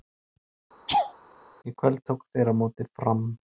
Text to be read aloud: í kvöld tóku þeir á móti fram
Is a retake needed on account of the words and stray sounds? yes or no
yes